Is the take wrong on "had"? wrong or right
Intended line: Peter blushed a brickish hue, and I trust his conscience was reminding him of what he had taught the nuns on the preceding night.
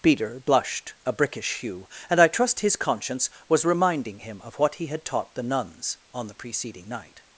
right